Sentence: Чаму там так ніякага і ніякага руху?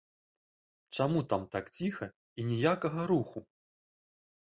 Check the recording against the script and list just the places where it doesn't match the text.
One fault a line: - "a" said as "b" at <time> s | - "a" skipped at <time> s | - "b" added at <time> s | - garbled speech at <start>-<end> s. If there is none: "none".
- "ніякага" said as "ціха" at 1.8 s